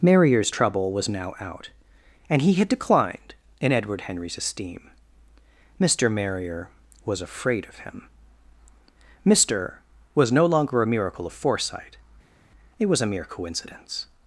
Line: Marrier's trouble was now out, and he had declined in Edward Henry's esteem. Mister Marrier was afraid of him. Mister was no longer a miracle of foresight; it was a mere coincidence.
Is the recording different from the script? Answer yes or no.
no